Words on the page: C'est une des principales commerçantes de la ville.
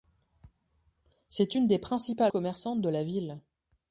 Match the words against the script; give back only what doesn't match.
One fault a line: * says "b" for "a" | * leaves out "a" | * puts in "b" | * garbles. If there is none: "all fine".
all fine